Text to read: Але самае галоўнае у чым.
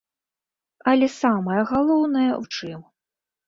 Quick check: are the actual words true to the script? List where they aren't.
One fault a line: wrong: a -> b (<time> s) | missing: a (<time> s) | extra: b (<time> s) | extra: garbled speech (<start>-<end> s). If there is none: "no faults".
no faults